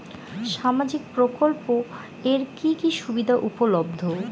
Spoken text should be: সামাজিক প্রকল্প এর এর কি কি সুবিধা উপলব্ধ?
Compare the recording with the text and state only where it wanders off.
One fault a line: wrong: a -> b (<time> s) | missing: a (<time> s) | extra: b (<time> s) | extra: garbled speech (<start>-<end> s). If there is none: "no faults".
missing: এর (2.4 s)